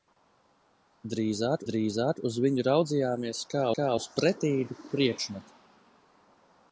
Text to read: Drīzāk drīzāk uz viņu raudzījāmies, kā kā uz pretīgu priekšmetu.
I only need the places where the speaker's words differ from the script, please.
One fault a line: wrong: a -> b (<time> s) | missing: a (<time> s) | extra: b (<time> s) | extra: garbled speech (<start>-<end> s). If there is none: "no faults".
no faults